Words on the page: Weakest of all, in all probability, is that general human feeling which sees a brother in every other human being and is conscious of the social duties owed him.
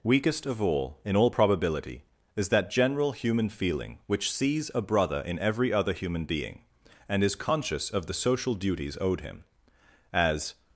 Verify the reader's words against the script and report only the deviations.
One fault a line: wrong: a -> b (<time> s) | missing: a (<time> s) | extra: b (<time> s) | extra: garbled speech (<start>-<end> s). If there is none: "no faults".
extra: As (10.1 s)